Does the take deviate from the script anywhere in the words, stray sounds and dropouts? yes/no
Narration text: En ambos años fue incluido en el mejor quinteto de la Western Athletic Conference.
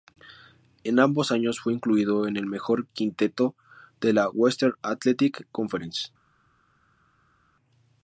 no